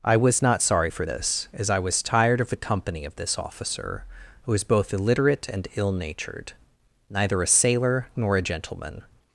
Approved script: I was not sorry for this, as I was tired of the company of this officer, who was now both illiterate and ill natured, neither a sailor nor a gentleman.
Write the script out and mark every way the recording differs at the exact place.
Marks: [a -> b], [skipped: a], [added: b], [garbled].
I was not sorry for this, as I was tired of the company of this officer, who was [skipped: now] both illiterate and ill natured, neither a sailor nor a gentleman.